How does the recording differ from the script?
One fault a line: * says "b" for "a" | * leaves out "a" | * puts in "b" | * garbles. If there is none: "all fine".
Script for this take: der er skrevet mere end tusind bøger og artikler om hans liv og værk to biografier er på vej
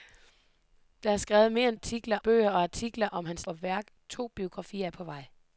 * says "artikler" for "tusind"
* leaves out "liv"